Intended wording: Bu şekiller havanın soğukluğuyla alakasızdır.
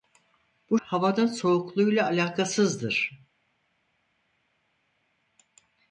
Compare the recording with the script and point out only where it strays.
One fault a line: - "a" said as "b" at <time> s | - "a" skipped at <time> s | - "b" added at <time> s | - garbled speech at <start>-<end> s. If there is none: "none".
- "şekiller" skipped at 0.8 s